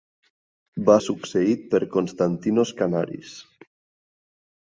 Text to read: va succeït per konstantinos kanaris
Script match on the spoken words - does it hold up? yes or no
yes